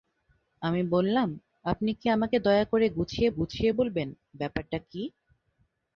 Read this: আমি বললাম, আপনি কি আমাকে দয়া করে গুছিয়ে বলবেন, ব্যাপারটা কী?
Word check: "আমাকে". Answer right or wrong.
right